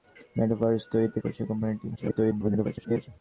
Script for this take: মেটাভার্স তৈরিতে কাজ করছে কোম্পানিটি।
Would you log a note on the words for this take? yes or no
yes